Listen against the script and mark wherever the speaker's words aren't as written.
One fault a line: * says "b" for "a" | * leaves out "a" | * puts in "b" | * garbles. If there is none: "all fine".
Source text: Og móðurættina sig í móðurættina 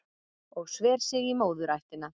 * says "sver" for "móðurættina"